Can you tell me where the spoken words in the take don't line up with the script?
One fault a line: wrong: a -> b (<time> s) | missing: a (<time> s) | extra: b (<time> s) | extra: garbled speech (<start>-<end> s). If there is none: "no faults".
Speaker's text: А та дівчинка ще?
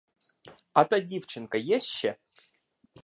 extra: є (1.5 s)